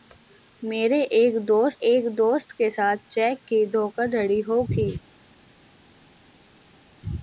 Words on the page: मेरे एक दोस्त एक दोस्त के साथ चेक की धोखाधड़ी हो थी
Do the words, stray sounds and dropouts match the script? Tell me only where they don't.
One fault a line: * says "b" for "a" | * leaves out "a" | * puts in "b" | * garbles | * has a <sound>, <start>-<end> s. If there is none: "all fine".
all fine